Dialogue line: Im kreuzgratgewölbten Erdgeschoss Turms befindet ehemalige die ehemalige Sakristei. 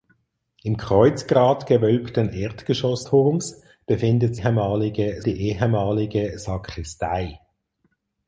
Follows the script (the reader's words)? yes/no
yes